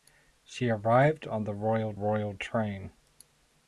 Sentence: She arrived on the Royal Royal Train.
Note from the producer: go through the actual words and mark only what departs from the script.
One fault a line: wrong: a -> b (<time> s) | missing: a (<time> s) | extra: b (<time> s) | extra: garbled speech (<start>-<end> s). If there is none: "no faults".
no faults